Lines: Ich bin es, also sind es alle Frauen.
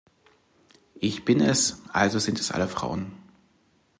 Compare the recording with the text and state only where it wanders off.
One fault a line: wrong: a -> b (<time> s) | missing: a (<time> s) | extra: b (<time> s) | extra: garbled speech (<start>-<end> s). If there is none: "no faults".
no faults